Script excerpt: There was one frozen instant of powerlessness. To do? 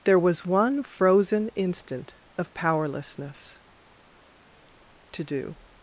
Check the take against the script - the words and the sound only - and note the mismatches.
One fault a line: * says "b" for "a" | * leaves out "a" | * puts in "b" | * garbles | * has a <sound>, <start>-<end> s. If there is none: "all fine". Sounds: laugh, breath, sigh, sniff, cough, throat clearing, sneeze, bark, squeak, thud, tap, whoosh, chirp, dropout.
all fine